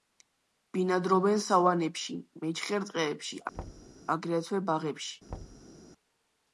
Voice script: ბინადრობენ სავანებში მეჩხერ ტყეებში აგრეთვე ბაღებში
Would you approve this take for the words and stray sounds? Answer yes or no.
no